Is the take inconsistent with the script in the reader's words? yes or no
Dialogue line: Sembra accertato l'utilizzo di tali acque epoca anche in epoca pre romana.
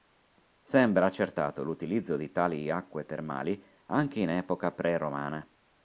yes